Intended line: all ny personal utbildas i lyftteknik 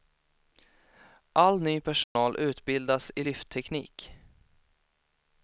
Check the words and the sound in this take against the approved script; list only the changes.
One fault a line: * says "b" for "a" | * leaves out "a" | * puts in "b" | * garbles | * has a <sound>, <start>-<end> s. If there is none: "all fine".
* has a dropout, 2.0-2.2 s